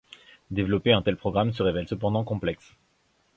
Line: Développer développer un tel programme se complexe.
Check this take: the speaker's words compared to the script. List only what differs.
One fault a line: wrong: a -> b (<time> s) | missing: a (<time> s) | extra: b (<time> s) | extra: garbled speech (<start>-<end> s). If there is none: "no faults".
missing: développer (0.9 s)
extra: révèle cependant (1.6 s)